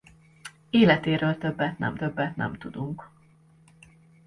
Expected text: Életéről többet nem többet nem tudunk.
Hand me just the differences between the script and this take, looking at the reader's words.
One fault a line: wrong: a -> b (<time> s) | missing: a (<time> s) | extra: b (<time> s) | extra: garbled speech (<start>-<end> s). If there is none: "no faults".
no faults